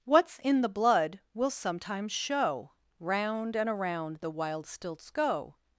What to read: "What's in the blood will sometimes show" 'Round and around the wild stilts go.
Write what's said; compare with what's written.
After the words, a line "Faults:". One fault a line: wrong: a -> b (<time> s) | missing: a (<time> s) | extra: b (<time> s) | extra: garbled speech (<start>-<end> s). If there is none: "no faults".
"What's in the blood will sometimes show" 'Round and around the wild stilts go.
Faults:
no faults